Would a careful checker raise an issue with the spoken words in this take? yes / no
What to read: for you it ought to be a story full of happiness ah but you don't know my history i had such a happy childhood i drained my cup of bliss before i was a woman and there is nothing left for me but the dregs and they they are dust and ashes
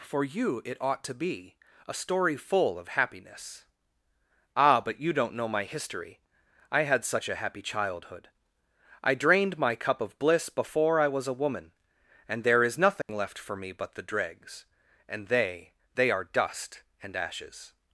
no